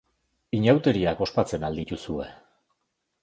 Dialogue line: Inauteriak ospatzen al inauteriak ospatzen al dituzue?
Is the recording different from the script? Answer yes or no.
yes